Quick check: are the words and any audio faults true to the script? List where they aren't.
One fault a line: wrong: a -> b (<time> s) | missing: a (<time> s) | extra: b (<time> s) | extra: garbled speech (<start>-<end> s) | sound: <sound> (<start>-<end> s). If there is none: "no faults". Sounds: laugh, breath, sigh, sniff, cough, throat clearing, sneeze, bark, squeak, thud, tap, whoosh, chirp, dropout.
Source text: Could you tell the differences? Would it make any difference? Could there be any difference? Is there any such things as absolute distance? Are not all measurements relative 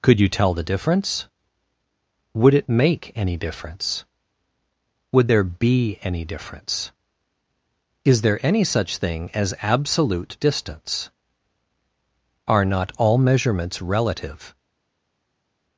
wrong: differences -> difference (0.6 s)
wrong: Could -> Would (5.1 s)
wrong: things -> thing (9.0 s)